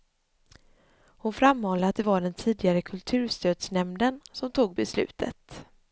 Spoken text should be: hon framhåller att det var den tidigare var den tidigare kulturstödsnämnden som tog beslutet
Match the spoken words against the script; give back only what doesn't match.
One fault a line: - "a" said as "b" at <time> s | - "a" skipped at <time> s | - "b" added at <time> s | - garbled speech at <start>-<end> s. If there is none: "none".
- "var den tidigare" skipped at 2.8 s